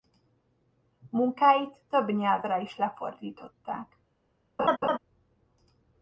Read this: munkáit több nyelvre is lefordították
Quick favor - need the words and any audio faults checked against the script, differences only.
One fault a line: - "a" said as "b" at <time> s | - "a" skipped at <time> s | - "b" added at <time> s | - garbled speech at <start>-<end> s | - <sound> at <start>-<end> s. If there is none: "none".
- laugh at 4.6-5.0 s